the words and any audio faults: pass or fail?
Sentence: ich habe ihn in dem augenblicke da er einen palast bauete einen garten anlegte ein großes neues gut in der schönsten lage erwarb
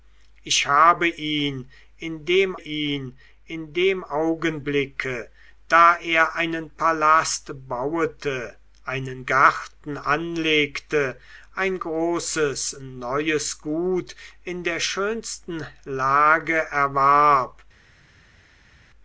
fail